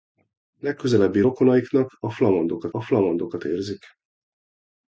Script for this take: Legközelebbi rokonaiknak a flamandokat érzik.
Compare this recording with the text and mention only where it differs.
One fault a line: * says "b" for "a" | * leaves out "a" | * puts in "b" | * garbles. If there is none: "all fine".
* puts in "a flamandokat"